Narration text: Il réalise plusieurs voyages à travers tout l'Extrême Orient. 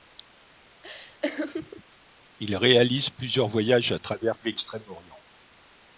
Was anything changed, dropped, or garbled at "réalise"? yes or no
no